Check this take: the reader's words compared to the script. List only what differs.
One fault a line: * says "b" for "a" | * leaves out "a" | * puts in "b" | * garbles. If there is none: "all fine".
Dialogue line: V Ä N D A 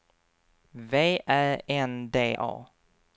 all fine